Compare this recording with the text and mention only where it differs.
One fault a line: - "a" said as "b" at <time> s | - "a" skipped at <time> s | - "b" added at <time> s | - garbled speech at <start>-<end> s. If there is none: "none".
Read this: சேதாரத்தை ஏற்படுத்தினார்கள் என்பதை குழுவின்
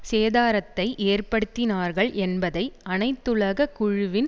- "அனைத்துலக" added at 2.9 s